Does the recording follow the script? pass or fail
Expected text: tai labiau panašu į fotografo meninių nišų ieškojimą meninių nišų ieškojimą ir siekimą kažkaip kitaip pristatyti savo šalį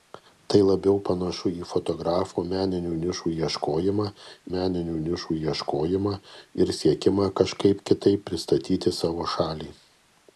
pass